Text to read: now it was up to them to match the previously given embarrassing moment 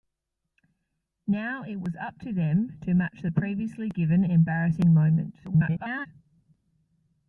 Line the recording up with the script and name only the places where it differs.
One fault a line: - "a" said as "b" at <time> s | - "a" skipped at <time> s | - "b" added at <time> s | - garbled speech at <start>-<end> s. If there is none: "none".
- garbled speech at 5.4-6.1 s